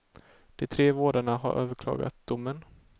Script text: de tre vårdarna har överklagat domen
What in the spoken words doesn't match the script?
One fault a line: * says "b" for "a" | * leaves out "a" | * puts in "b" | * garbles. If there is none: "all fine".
all fine